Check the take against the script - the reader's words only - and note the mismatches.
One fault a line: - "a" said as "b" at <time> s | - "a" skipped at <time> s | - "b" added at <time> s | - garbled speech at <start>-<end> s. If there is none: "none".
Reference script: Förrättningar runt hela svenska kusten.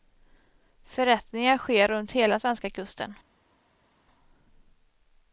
- "sker" added at 1.6 s